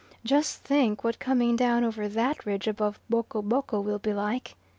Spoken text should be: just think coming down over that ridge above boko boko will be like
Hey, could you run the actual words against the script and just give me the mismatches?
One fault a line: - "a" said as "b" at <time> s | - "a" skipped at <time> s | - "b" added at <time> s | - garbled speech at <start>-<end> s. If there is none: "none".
- "what" added at 1.0 s